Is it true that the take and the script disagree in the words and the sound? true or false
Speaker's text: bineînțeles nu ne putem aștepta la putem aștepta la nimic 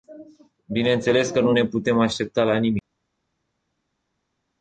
true